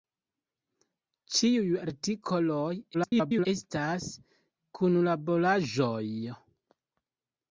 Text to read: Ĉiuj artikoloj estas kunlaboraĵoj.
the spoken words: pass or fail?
fail